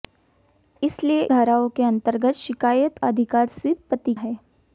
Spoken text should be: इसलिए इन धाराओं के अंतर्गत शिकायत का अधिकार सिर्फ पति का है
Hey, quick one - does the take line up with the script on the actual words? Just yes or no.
no